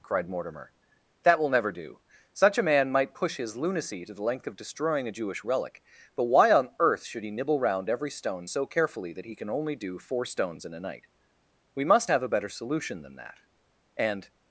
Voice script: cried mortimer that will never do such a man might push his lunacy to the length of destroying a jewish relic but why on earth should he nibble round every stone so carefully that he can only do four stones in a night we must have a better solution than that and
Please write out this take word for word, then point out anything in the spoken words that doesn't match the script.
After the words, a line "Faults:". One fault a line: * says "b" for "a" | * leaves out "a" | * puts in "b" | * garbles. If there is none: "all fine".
cried mortimer that will never do such a man might push his lunacy to the length of destroying a jewish relic but why on earth should he nibble round every stone so carefully that he can only do four stones in a night we must have a better solution than that and
Faults:
all fine